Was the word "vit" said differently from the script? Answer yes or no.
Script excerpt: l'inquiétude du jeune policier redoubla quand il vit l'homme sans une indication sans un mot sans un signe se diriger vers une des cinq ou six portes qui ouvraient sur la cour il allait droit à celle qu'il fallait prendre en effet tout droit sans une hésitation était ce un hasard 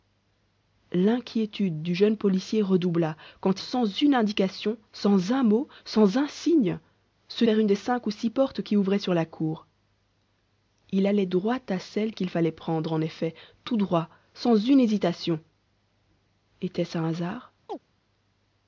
yes